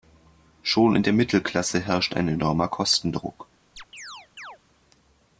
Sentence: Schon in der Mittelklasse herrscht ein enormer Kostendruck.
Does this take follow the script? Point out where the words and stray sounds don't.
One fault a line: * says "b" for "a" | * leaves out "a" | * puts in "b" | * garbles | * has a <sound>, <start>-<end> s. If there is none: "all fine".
* has a chirp, 3.8-4.6 s